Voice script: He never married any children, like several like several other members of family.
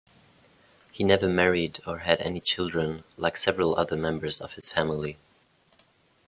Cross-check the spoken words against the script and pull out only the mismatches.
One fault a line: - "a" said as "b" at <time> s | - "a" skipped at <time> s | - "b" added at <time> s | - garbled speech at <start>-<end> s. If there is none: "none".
- "or had" added at 1.9 s
- "like several" skipped at 3.8 s
- "his" added at 4.6 s